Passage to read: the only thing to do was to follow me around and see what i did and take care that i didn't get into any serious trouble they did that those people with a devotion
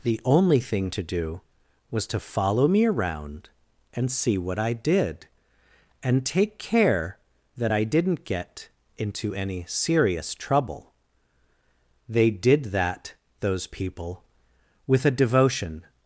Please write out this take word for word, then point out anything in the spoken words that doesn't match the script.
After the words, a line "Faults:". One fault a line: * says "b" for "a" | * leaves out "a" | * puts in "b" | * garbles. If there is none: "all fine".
the only thing to do was to follow me around and see what i did and take care that i didn't get into any serious trouble they did that those people with a devotion
Faults:
all fine